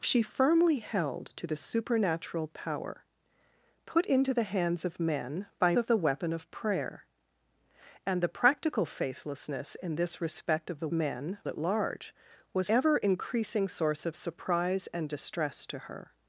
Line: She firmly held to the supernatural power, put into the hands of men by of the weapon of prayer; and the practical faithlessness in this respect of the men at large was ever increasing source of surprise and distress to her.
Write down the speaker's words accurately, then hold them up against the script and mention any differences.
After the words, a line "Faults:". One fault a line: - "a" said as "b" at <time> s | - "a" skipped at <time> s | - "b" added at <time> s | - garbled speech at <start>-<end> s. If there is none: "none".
She firmly held to the supernatural power, put into the hands of men by of the weapon of prayer; and the practical faithlessness in this respect of the men at large was ever increasing source of surprise and distress to her.
Faults:
none